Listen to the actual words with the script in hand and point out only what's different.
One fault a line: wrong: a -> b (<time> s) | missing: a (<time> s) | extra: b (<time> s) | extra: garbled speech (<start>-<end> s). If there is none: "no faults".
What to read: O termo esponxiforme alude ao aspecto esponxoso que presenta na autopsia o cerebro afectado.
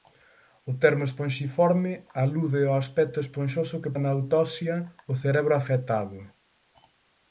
missing: presenta (4.0 s)